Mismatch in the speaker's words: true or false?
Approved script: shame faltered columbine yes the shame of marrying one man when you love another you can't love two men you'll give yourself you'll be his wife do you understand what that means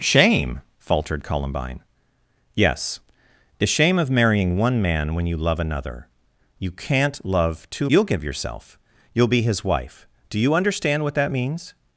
true